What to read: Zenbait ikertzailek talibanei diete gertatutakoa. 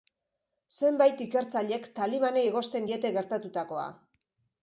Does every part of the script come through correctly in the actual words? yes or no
no